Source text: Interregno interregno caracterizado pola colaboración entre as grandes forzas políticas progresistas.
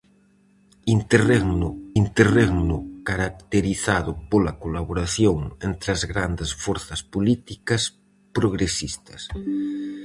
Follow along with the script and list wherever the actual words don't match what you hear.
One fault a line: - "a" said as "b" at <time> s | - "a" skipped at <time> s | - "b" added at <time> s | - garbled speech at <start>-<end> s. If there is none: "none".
none